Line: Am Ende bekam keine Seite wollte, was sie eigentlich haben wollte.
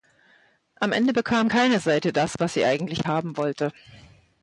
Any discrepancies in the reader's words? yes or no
yes